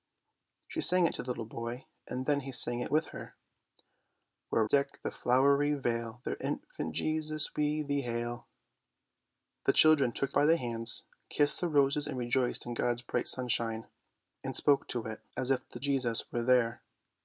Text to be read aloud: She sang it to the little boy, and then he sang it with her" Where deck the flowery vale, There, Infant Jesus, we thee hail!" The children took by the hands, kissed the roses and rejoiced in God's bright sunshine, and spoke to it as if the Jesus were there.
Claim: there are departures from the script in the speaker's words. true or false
false